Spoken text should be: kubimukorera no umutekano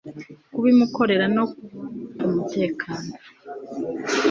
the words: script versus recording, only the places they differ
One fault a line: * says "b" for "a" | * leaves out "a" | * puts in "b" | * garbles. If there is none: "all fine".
all fine